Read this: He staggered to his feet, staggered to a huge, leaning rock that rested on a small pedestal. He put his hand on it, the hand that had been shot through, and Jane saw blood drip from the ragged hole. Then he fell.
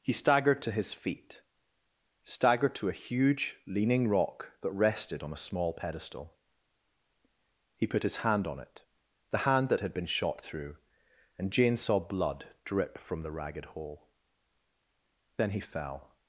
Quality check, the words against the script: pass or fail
pass